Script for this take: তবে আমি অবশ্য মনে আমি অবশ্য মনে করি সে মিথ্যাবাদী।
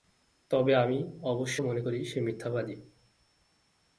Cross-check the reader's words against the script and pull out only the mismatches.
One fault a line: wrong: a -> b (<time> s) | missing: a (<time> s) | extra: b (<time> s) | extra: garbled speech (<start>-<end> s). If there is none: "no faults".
missing: আমি অবশ্য মনে (1.8 s)